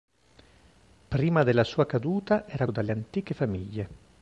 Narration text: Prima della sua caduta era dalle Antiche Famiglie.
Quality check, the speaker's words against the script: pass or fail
pass